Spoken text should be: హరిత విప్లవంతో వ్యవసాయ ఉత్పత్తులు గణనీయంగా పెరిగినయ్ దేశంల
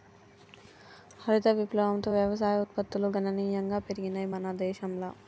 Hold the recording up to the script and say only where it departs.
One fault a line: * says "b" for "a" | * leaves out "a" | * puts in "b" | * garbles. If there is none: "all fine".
* puts in "మన"